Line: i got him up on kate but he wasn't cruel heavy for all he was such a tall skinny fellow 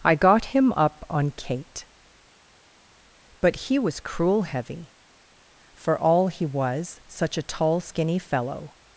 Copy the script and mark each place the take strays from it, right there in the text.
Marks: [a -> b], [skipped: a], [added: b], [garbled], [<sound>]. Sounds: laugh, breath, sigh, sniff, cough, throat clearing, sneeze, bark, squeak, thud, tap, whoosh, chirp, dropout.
i got him up on kate but he [wasn't -> was] cruel heavy for all he was such a tall skinny fellow